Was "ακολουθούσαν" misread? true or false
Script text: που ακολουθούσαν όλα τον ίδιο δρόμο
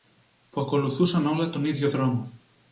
false